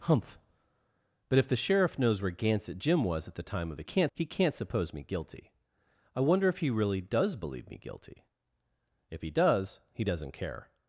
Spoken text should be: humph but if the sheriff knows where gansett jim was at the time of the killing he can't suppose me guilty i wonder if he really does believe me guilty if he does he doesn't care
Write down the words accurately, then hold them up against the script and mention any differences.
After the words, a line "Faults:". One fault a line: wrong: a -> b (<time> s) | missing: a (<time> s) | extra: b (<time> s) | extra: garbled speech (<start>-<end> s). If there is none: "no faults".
humph but if the sheriff knows where gansett jim was at the time of the can't he can't suppose me guilty i wonder if he really does believe me guilty if he does he doesn't care
Faults:
wrong: killing -> can't (3.8 s)